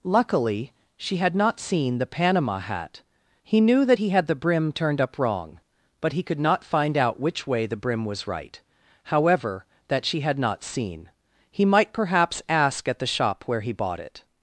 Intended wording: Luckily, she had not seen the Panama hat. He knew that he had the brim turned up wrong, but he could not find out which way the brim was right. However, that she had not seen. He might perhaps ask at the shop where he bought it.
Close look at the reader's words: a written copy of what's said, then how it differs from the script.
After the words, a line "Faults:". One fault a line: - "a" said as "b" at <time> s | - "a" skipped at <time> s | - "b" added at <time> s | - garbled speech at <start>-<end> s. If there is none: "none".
Luckily, she had not seen the Panama hat. He knew that he had the brim turned up wrong, but he could not find out which way the brim was right. However, that she had not seen. He might perhaps ask at the shop where he bought it.
Faults:
none